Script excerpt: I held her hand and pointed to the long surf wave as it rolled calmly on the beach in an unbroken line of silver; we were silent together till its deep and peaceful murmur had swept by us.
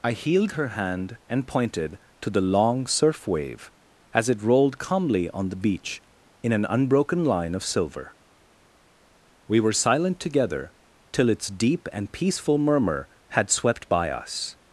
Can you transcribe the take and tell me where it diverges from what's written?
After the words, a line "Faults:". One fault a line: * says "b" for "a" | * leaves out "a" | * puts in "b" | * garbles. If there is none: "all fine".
I healed her hand and pointed to the long surf wave as it rolled calmly on the beach in an unbroken line of silver; we were silent together till its deep and peaceful murmur had swept by us.
Faults:
* says "healed" for "held"